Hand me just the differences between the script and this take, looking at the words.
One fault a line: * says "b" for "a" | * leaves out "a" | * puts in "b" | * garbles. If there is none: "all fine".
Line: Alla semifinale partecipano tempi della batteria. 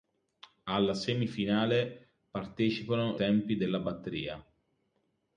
all fine